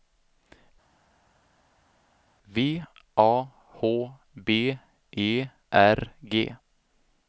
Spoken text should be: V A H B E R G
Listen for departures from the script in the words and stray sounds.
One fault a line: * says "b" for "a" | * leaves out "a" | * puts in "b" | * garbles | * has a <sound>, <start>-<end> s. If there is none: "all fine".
all fine